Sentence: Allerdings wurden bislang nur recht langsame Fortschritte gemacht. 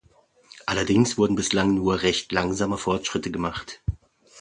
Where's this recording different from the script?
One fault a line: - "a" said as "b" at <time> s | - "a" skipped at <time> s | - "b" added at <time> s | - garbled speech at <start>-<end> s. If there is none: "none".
none